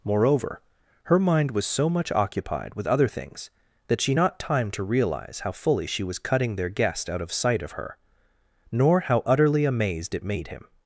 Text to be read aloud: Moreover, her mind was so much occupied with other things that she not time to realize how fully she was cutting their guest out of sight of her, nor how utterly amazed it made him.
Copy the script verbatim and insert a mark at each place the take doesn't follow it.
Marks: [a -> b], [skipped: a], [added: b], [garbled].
Moreover, her mind was so much occupied with other things that she not time to realize how fully she was cutting their guest out of sight of her, nor how utterly amazed it made him.